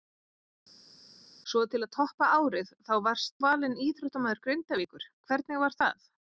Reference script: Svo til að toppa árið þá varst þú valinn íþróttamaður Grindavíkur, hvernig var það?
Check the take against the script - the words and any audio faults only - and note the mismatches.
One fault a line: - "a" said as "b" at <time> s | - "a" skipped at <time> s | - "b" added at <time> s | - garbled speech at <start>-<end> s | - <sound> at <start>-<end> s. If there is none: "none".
- "þú" skipped at 3.4 s